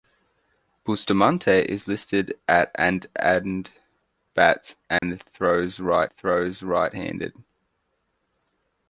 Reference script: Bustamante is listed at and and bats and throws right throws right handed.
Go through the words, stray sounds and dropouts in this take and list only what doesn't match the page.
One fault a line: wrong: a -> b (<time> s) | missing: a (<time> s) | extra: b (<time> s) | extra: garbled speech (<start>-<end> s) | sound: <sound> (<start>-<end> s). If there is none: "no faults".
sound: dropout (5.0-5.0 s)